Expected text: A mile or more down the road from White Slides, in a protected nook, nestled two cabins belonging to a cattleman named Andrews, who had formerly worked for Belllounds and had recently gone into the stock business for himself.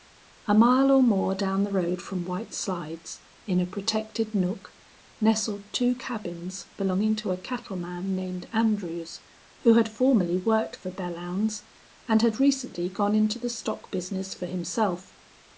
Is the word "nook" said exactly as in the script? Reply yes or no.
yes